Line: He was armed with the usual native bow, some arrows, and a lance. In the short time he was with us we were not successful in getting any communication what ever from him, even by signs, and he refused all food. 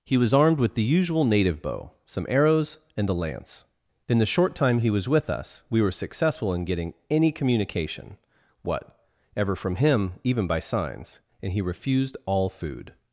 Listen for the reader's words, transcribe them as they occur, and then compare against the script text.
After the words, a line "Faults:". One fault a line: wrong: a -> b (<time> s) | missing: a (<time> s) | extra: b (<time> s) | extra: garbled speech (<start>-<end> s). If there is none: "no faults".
He was armed with the usual native bow, some arrows, and a lance. In the short time he was with us we were successful in getting any communication what ever from him, even by signs, and he refused all food.
Faults:
missing: not (5.9 s)